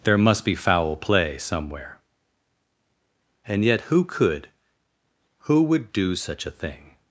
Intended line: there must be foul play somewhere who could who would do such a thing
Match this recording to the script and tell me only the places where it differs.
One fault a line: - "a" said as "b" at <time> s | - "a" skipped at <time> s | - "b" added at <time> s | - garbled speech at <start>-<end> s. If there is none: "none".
- "and yet" added at 3.5 s